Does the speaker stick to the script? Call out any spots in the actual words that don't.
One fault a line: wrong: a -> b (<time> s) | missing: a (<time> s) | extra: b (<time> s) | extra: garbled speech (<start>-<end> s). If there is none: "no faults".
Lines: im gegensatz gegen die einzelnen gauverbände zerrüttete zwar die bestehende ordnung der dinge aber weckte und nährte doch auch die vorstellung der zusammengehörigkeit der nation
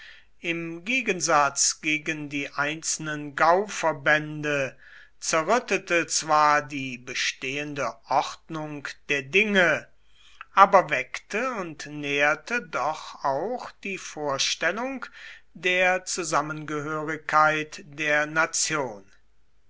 no faults